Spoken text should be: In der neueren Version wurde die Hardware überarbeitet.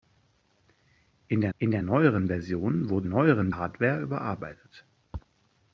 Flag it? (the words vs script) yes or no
yes